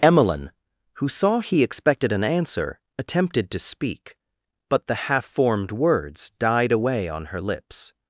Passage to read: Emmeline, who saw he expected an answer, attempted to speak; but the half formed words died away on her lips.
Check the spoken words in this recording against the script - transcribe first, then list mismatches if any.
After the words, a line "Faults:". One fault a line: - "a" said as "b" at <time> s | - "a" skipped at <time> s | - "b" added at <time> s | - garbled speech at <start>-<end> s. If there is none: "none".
Emmeline, who saw he expected an answer, attempted to speak; but the half formed words died away on her lips.
Faults:
none